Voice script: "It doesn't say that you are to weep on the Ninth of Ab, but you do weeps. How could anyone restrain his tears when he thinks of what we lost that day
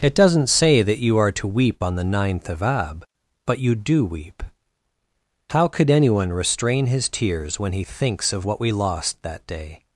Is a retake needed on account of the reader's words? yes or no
yes